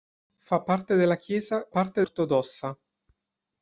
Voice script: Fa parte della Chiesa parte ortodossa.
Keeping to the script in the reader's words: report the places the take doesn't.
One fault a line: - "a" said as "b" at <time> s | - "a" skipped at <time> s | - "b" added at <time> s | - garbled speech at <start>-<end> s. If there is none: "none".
none